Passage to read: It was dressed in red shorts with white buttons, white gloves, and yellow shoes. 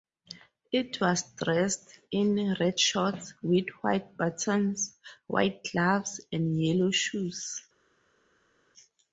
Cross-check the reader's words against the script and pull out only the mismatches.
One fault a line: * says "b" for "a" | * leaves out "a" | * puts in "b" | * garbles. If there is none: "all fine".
all fine